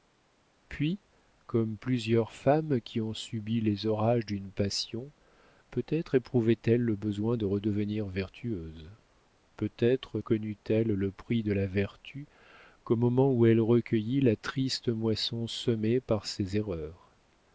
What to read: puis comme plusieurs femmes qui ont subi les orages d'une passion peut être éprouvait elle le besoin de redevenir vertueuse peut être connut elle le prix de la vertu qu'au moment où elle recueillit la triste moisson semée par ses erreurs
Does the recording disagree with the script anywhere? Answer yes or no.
no